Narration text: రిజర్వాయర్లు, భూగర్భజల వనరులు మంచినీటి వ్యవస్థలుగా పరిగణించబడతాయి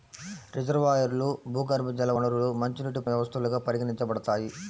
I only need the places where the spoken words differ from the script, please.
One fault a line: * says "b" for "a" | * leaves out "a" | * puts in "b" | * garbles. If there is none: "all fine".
all fine